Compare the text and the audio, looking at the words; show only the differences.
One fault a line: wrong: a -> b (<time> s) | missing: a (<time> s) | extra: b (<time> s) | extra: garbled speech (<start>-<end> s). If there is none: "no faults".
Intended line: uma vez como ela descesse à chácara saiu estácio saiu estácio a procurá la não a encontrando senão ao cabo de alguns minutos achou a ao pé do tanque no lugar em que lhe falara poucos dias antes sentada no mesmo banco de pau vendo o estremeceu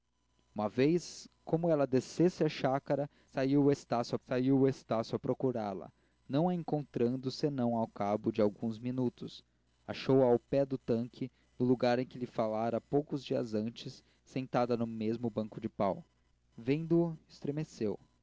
no faults